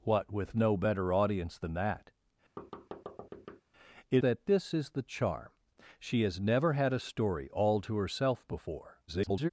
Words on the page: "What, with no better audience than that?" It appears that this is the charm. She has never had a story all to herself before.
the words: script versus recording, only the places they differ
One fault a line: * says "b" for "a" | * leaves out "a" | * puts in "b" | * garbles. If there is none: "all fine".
* leaves out "appears"
* garbles